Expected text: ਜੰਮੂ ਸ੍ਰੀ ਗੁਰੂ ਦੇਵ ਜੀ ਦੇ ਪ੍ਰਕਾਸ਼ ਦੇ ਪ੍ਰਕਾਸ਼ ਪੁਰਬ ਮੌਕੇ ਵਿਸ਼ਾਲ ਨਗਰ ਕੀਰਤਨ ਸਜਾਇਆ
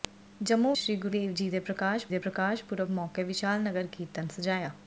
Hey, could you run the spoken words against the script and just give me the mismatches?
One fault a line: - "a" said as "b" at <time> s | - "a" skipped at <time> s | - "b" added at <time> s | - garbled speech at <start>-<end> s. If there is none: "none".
none